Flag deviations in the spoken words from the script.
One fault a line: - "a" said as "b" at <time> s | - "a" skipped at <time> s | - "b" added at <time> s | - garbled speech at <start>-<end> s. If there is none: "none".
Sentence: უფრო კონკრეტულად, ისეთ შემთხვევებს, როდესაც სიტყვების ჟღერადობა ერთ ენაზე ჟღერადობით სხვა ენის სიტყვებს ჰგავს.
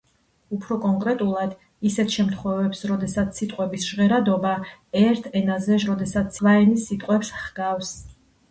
- "ჟღერადობით" said as "როდესაც" at 5.9 s